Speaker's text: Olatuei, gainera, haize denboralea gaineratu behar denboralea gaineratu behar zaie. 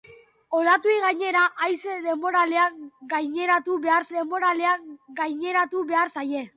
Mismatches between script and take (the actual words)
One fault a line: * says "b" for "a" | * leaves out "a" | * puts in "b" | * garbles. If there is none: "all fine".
all fine